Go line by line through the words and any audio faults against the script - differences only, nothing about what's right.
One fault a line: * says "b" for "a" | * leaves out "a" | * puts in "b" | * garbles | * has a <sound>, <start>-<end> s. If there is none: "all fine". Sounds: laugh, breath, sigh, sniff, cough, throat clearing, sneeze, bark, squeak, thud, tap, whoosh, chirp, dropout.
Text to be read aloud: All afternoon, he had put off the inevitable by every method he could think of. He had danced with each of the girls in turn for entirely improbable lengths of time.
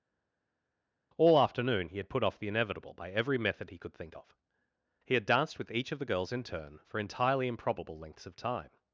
all fine